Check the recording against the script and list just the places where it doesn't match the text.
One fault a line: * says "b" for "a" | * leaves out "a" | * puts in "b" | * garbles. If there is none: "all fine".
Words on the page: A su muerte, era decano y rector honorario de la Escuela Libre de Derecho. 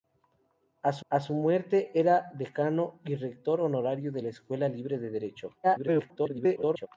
* puts in "a su"
* garbles